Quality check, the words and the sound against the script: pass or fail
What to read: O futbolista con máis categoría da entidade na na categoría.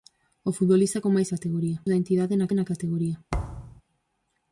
fail